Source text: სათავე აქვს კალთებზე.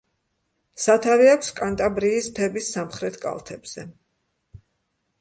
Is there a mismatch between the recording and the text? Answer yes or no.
yes